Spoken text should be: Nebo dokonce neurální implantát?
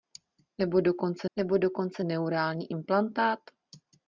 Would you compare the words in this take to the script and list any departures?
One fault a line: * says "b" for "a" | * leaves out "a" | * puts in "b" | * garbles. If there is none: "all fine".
* puts in "nebo dokonce"